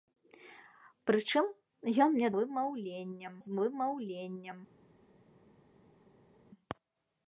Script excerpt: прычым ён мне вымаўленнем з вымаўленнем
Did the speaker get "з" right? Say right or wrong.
right